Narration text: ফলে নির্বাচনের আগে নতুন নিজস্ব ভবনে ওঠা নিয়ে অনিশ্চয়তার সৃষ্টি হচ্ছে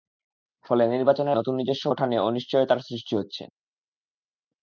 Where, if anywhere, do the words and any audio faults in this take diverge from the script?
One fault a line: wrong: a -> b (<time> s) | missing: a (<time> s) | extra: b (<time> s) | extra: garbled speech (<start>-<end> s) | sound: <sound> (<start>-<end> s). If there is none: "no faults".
missing: আগে (1.4 s)
missing: ভবনে (1.9 s)